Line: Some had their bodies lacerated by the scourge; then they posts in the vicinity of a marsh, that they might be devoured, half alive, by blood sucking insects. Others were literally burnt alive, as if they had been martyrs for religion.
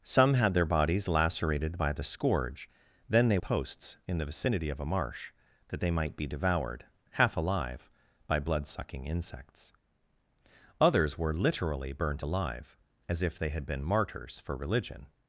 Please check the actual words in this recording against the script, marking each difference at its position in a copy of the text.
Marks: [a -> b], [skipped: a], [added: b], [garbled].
Some had their bodies lacerated by the scourge; then they posts in the vicinity of a marsh, that they might be devoured, half alive, by blood sucking insects. Others were literally burnt alive, as if they had been martyrs for religion.